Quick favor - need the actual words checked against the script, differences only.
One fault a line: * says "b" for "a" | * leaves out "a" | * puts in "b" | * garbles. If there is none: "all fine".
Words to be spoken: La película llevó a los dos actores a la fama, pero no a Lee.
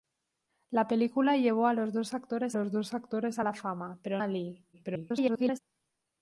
* puts in "los dos actores"
* leaves out "no"
* garbles